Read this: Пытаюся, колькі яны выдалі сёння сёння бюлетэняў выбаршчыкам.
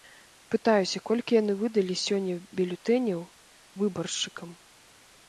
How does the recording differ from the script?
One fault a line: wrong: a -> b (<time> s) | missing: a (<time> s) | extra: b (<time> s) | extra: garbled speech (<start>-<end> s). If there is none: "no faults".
missing: сёння (2.4 s)